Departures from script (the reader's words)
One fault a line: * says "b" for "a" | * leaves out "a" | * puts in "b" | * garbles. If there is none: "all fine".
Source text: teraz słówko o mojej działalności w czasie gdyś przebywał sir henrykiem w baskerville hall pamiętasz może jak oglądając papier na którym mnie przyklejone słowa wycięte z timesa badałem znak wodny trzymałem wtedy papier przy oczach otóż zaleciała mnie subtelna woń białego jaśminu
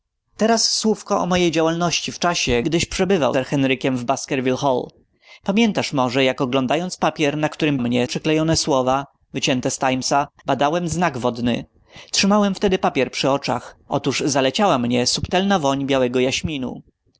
all fine